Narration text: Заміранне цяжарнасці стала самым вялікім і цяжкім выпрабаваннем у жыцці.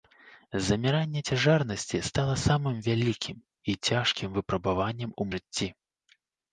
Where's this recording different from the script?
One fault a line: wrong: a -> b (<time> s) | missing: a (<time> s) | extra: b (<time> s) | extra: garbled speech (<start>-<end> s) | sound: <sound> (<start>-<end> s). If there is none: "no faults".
no faults